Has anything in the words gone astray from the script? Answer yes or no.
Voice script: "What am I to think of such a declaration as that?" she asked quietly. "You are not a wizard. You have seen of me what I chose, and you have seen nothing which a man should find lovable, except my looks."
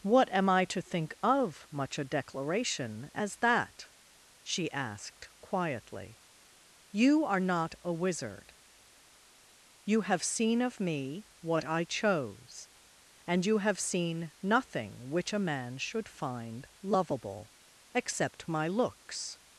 yes